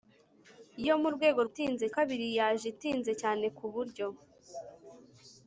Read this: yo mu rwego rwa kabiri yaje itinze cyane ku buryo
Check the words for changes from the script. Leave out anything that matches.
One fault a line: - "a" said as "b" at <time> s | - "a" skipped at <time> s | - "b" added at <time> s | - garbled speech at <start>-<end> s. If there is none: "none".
- "rwa" said as "itinze" at 1.5 s